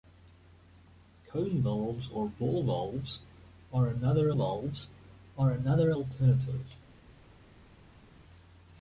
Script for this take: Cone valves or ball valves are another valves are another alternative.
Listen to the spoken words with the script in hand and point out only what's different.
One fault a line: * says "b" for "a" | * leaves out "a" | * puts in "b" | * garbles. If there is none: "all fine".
all fine